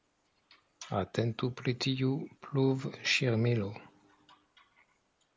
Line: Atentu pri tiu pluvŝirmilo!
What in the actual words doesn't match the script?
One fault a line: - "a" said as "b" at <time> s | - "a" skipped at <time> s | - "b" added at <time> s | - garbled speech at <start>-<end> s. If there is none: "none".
none